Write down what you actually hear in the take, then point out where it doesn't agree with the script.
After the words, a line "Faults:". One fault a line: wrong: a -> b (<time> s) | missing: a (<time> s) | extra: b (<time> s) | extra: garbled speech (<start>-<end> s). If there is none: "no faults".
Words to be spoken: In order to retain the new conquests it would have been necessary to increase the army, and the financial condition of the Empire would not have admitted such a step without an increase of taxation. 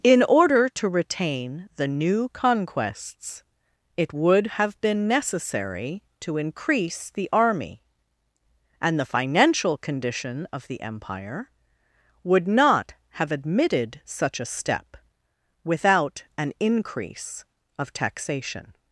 In order to retain the new conquests it would have been necessary to increase the army, and the financial condition of the Empire would not have admitted such a step without an increase of taxation.
Faults:
no faults